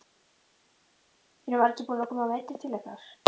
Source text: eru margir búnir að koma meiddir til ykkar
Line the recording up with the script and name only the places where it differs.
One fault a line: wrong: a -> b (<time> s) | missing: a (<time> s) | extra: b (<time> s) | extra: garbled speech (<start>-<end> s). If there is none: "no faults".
no faults